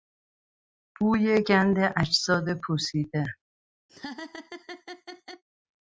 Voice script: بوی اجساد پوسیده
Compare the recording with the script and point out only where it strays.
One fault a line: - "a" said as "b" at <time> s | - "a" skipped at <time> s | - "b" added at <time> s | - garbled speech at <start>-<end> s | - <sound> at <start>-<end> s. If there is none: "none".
- "گند" added at 1.4 s
- laugh at 3.9-5.4 s